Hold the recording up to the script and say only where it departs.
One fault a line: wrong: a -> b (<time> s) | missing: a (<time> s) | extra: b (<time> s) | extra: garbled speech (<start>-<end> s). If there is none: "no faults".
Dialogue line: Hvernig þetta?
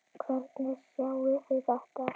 extra: sjáið þið (0.9 s)